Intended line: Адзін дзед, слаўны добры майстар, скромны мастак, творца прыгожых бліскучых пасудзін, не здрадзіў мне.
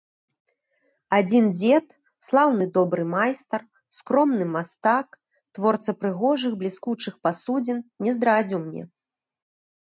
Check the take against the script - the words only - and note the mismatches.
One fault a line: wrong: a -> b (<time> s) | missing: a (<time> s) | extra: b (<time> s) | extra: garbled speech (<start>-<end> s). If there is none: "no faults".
no faults